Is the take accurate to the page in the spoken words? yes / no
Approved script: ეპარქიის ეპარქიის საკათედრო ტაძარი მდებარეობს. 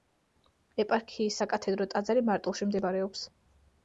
no